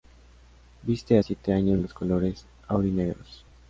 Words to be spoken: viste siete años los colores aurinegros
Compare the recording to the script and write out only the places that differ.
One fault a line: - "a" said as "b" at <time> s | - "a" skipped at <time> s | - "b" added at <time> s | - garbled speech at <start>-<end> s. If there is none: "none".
none